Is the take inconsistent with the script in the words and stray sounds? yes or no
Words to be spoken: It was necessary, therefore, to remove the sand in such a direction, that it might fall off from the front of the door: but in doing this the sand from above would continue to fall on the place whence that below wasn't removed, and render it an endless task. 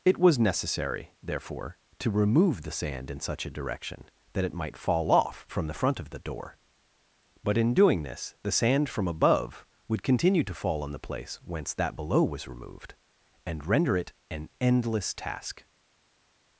yes